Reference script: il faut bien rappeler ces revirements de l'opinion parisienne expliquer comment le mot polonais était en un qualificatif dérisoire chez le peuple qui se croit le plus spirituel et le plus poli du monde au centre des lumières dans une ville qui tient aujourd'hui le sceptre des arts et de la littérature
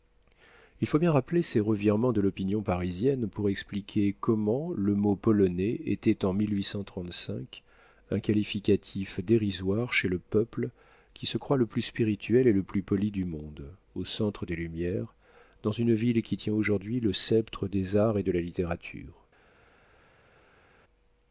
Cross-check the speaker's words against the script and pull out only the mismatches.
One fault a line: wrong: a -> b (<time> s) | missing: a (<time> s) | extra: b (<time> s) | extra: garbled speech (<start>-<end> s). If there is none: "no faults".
extra: pour (3.3 s)